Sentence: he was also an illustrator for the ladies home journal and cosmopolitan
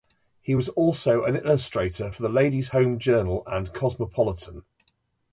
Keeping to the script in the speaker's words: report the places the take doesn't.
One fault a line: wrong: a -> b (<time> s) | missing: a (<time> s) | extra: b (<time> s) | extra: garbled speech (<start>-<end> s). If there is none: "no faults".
no faults